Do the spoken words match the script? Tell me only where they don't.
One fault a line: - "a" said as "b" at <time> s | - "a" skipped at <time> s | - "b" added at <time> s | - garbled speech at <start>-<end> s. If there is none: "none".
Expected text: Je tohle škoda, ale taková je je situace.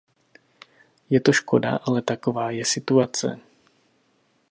- "tohle" said as "to" at 1.2 s
- "je" skipped at 2.7 s